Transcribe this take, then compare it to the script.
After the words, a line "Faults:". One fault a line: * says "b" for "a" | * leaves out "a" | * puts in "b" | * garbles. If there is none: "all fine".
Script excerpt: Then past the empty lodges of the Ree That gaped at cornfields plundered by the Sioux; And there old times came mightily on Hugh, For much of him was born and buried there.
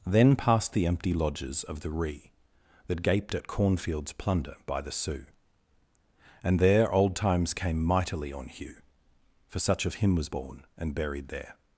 Then past the empty lodges of the Ree That gaped at cornfields plunder by the Sioux; And there old times came mightily on Hugh, For such of him was born and buried there.
Faults:
* says "plunder" for "plundered"
* says "such" for "much"